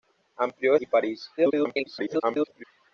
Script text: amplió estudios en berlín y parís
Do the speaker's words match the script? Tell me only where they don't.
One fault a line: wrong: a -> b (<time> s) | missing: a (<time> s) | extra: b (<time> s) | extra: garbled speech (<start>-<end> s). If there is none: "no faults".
missing: estudios en berlín (0.8 s)
extra: garbled speech (1.4-2.6 s)